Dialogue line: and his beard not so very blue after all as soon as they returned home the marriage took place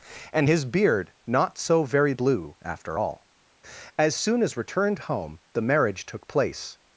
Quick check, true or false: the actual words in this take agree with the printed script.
false